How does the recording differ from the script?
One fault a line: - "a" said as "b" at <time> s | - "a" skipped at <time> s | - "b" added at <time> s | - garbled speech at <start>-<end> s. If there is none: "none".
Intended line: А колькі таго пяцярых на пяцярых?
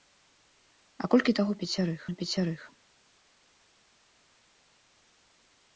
none